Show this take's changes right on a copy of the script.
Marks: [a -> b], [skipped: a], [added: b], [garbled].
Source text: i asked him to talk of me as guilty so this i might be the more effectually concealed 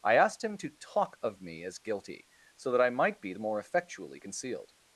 i asked him to talk of me as guilty so [this -> that] i might be the more effectually concealed